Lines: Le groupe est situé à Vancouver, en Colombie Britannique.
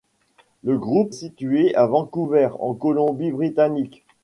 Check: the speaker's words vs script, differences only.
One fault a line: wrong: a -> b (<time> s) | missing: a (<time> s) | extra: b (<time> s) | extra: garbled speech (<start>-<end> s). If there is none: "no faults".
missing: est (1.1 s)